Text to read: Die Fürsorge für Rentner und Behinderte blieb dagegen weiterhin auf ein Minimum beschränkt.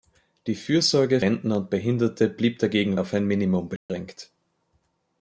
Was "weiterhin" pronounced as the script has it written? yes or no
no